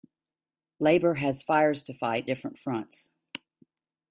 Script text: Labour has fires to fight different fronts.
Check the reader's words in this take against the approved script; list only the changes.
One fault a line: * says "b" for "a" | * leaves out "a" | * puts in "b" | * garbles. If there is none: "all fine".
all fine